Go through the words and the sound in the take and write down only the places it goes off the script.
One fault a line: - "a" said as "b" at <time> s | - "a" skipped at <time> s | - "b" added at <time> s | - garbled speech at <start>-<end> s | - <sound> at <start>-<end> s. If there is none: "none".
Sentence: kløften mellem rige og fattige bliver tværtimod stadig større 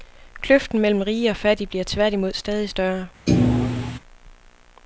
- thud at 3.3-4.0 s